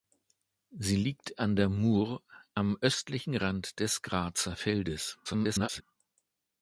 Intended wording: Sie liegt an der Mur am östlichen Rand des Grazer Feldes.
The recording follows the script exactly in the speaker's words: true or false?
false